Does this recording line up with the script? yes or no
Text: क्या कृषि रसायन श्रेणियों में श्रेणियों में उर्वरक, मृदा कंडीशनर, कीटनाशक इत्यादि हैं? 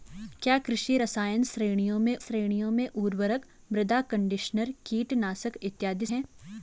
yes